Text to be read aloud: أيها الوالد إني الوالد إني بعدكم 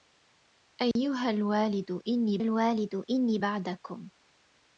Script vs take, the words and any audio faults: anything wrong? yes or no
yes